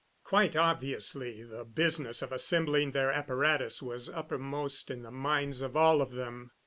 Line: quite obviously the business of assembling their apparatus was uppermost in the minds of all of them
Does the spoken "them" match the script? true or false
true